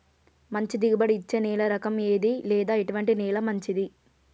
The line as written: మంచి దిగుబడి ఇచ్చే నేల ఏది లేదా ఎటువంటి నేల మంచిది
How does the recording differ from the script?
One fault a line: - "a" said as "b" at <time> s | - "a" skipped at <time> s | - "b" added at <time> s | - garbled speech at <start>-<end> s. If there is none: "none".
- "రకం" added at 1.7 s